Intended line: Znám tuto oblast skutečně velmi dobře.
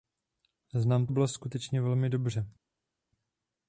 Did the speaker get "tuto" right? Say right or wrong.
wrong